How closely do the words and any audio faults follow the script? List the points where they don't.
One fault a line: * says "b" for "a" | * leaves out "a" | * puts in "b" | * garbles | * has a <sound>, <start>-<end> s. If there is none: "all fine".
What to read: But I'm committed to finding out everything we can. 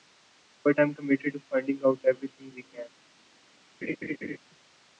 * has a laugh, 3.8-4.4 s